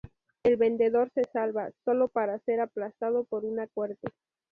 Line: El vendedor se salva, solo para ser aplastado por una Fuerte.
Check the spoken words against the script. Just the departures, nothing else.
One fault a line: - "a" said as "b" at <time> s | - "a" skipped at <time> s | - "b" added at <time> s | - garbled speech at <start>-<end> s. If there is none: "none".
none